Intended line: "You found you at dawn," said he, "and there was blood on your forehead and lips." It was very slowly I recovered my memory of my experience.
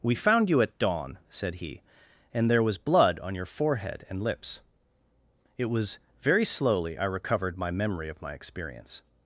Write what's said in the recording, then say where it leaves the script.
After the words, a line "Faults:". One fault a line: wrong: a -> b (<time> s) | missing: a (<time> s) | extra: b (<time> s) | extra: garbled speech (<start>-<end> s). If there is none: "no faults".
"We found you at dawn," said he, "and there was blood on your forehead and lips." It was very slowly I recovered my memory of my experience.
Faults:
wrong: You -> We (0.0 s)